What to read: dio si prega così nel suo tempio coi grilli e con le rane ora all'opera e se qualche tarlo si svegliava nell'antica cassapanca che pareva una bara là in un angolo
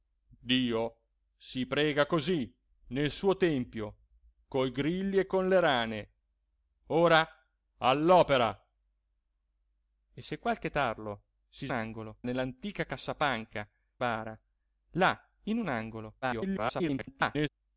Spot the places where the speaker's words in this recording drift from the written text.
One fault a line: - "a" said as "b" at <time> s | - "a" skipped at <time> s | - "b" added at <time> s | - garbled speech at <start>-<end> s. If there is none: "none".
- "svegliava" said as "angolo" at 11.7 s
- "che pareva una" skipped at 13.7 s
- garbled speech at 16.2-17.5 s